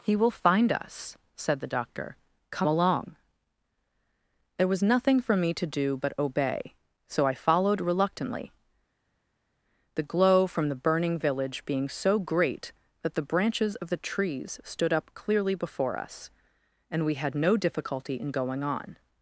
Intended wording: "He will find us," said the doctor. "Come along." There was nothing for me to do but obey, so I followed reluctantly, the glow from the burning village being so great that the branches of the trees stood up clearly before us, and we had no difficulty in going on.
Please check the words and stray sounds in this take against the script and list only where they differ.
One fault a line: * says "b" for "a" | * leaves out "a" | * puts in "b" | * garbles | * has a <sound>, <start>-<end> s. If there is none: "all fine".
all fine